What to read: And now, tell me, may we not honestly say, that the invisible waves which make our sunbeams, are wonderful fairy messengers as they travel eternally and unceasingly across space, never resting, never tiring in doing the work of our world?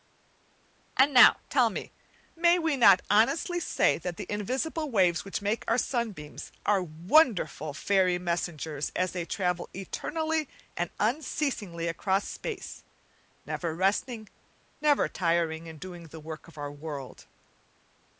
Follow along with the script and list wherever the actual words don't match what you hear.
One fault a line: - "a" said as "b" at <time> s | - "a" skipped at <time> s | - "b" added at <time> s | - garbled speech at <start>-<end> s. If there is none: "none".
none